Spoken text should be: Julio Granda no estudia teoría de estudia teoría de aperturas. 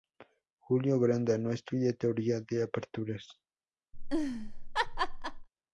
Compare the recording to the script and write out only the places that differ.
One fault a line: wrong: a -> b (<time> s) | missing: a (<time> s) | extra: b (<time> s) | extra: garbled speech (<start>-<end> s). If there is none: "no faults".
missing: estudia teoría de (2.6 s)